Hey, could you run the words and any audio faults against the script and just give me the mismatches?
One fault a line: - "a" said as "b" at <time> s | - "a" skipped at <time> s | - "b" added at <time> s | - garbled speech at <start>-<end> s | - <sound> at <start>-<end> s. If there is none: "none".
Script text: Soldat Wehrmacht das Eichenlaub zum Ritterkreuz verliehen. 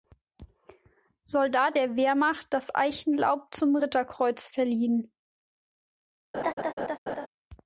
- "der" added at 1.7 s
- laugh at 6.3-7.3 s